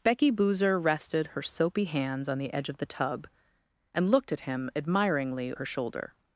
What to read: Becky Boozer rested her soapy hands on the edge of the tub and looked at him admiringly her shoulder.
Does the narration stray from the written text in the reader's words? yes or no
no